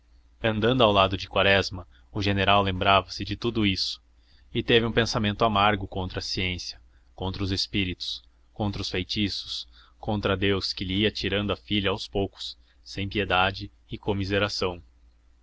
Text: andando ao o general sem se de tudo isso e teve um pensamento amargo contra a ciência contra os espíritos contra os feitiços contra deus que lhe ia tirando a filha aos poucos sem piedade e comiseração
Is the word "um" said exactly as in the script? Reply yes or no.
yes